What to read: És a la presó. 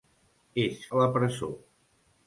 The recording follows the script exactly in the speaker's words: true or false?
true